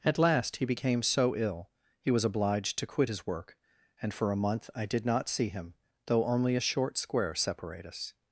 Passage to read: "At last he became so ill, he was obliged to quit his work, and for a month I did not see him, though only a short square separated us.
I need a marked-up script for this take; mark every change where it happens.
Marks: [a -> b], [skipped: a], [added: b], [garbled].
"At last he became so ill, he was obliged to quit his work, and for a month I did not see him, though only a short square [separated -> separate] us.